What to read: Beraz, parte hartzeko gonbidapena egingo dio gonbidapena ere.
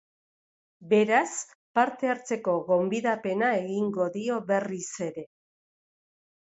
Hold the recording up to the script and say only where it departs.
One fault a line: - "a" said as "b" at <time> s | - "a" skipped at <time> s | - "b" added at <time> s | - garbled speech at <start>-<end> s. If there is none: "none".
- "gonbidapena" said as "berriz" at 4.5 s